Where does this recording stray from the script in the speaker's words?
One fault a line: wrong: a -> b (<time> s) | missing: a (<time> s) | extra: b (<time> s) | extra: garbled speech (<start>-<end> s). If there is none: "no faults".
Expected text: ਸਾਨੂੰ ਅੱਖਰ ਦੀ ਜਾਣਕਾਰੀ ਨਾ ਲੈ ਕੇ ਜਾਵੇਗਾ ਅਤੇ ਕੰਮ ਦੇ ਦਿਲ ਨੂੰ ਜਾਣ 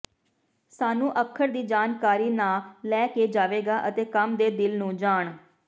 no faults